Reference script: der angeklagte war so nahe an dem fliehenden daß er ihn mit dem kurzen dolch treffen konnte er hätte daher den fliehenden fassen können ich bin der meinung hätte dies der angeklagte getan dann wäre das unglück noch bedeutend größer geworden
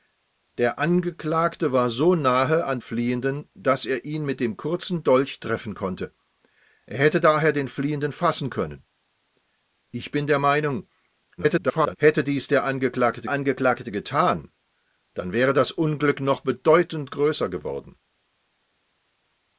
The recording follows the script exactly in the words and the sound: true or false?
false